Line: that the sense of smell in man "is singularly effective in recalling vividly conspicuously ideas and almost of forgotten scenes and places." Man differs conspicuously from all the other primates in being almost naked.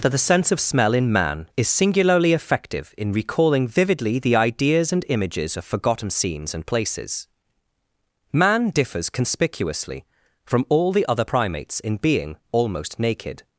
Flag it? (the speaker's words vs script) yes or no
yes